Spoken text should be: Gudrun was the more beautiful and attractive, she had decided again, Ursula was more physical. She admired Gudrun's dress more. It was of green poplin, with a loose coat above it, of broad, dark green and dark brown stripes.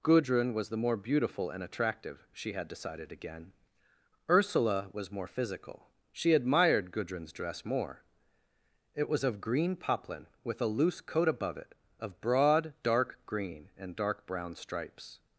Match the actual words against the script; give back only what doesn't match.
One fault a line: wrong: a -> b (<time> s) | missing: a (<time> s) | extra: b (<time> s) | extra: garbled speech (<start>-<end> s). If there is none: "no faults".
no faults